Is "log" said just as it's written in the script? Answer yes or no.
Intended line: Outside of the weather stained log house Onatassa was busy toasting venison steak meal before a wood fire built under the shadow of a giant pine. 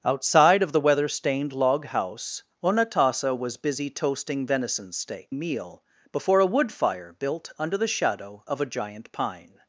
yes